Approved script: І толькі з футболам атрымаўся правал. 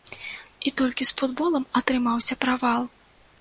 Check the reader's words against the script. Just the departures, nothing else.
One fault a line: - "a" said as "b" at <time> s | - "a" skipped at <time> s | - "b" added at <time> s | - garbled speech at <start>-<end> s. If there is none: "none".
none